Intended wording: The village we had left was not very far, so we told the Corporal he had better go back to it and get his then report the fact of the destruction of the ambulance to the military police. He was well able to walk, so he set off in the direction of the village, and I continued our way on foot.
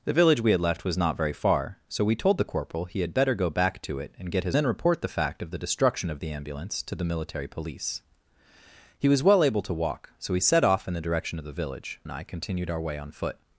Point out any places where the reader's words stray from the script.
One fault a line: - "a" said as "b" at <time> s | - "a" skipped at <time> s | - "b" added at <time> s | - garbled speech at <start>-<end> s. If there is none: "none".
none